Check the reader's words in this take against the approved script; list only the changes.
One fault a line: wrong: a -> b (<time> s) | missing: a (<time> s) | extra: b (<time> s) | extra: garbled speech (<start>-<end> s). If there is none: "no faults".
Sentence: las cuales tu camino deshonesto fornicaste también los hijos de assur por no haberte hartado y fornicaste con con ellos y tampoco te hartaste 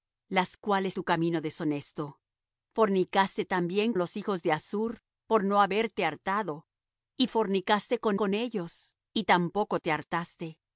no faults